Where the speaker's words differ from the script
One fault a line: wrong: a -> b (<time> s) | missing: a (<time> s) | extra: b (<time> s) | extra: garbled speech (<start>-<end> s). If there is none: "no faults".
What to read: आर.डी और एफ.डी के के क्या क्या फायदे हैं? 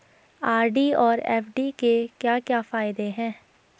missing: के (1.9 s)